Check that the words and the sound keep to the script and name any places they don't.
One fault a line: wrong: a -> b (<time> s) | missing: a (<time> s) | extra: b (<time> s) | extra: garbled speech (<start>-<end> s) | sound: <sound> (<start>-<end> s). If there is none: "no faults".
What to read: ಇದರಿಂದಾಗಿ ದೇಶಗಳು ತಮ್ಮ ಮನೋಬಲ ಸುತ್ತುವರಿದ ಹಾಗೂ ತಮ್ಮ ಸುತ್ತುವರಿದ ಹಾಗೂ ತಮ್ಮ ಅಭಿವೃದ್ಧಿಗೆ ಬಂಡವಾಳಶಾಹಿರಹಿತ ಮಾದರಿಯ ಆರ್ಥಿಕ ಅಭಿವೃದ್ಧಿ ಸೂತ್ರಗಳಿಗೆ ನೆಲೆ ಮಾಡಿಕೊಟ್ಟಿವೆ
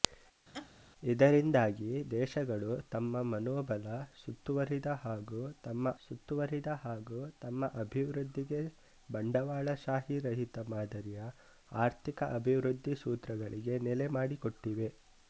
sound: laugh (0.5-0.7 s)